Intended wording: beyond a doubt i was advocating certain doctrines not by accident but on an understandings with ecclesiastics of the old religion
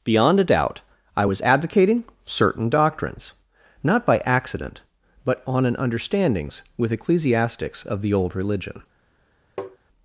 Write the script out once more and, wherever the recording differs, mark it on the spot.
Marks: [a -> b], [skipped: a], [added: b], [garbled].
beyond a doubt i was advocating certain doctrines not by accident but on an understandings with ecclesiastics of the old religion